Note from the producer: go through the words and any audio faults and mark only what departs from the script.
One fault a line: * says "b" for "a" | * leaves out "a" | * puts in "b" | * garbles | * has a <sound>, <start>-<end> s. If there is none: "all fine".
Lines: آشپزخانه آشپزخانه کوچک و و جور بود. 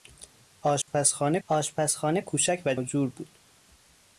* has a dropout, 0.8-0.9 s